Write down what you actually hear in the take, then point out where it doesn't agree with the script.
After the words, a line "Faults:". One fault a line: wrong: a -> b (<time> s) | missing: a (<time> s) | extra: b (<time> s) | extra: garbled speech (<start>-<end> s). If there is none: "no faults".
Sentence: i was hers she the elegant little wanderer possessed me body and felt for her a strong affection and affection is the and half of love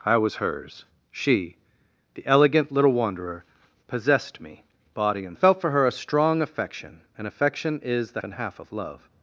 i was hers she the elegant little wanderer possessed me body and felt for her a strong affection and affection is the and half of love
Faults:
no faults